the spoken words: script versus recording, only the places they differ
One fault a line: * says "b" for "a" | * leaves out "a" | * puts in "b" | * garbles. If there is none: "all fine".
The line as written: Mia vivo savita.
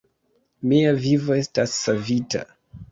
* puts in "estas"